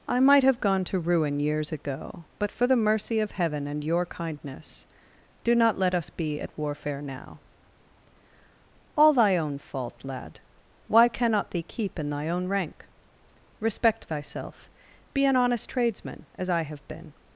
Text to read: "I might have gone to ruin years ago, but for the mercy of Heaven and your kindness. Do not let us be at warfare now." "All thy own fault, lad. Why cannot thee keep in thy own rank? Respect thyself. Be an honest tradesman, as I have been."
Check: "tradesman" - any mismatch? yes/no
no